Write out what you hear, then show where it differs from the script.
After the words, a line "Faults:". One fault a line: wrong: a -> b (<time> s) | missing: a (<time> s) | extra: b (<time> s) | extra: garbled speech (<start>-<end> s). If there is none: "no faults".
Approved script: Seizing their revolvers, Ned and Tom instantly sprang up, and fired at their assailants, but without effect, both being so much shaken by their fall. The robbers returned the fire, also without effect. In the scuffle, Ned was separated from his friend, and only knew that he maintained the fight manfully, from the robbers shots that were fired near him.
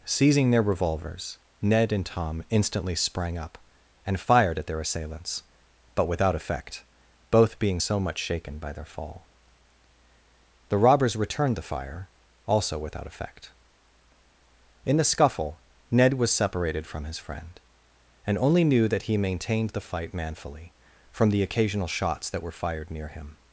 Seizing their revolvers, Ned and Tom instantly sprang up, and fired at their assailants, but without effect, both being so much shaken by their fall. The robbers returned the fire, also without effect. In the scuffle, Ned was separated from his friend, and only knew that he maintained the fight manfully, from the occasional shots that were fired near him.
Faults:
wrong: robbers -> occasional (21.4 s)